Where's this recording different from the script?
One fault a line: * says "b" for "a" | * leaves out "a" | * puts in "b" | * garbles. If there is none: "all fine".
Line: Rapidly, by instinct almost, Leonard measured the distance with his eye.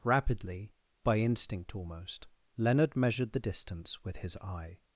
all fine